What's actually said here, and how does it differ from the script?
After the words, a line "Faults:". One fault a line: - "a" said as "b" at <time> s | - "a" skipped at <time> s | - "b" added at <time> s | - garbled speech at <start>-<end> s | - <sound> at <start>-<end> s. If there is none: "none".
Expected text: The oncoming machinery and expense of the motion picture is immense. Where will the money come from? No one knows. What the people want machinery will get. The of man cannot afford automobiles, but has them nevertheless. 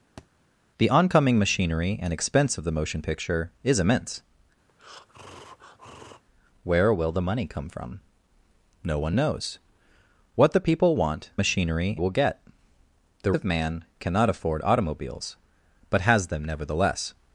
The oncoming machinery and expense of the motion picture is immense. Where will the money come from? No one knows. What the people want machinery will get. The of man cannot afford automobiles, but has them nevertheless.
Faults:
- thud at 0.2-0.3 s
- breath at 4.7-6.2 s